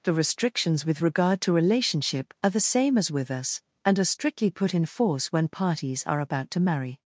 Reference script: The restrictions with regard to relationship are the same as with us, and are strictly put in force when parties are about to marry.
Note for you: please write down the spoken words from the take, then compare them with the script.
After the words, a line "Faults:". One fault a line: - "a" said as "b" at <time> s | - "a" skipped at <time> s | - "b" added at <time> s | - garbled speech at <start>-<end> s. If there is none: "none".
The restrictions with regard to relationship are the same as with us, and are strictly put in force when parties are about to marry.
Faults:
none